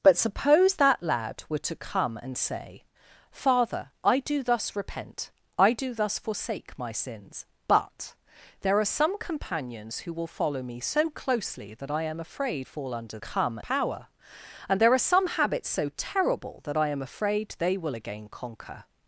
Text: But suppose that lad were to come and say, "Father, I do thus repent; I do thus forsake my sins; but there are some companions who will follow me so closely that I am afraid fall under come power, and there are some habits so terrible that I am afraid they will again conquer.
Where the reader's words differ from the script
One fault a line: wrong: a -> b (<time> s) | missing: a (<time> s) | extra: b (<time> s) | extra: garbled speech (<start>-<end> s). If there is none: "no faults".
no faults